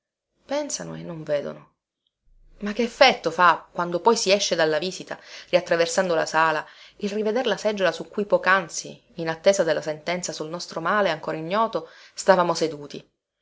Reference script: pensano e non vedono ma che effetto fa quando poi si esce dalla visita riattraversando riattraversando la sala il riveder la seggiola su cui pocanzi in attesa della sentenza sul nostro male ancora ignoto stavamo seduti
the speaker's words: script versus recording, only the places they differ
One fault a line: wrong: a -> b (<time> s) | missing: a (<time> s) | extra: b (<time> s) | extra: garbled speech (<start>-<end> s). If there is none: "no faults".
missing: riattraversando (6.1 s)